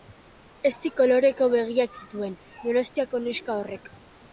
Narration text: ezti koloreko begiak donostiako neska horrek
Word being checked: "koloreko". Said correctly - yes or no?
yes